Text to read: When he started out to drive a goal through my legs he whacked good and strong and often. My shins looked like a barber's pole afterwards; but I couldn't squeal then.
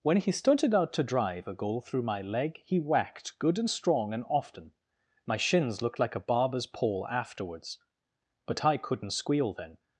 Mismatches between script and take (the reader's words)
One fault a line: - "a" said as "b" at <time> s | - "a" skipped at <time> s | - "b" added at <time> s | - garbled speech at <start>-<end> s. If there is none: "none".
- "legs" said as "leg" at 2.2 s